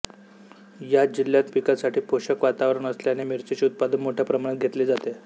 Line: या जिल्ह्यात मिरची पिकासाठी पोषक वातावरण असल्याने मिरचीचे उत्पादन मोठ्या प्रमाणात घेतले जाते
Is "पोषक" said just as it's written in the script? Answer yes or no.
yes